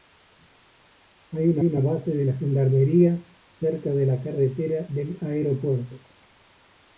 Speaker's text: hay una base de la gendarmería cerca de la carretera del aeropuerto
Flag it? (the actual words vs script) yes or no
yes